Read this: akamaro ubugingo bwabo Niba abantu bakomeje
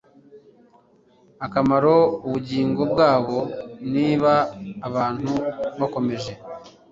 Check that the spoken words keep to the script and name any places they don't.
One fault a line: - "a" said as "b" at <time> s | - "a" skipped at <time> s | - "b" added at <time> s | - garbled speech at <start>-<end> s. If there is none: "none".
none